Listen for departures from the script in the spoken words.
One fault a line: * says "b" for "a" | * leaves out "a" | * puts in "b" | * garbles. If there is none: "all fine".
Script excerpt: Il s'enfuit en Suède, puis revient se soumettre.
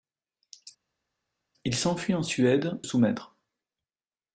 * leaves out "puis revient se"